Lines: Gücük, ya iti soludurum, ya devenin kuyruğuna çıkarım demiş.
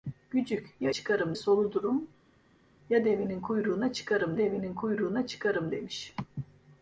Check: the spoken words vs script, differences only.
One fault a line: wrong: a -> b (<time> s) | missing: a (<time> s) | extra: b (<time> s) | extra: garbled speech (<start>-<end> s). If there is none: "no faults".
wrong: iti -> çıkarım (0.9 s)
extra: devenin kuyruğuna çıkarım (4.4 s)